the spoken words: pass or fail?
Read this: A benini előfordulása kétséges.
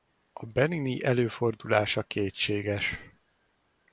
pass